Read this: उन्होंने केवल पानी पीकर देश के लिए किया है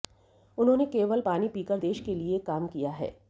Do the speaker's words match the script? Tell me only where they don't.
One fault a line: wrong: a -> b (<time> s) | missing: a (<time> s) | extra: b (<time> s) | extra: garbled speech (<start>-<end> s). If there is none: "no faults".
extra: काम (2.4 s)